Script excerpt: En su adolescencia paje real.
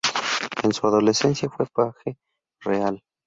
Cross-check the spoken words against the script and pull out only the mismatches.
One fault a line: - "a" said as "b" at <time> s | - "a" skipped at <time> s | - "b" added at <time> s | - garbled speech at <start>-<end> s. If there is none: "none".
- "fue" added at 1.5 s